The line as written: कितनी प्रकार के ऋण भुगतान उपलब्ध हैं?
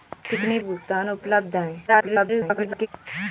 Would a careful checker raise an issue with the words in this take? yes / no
yes